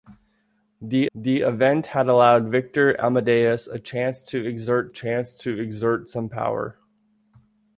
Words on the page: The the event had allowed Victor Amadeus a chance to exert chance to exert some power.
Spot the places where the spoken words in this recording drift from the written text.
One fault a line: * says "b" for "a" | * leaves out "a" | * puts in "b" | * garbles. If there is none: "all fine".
all fine